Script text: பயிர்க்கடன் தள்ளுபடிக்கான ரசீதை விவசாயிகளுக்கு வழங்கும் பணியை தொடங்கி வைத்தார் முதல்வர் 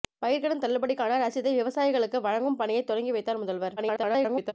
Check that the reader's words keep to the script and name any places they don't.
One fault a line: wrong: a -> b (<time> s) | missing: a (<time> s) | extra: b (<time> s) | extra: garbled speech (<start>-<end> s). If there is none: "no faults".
extra: garbled speech (3.8-4.5 s)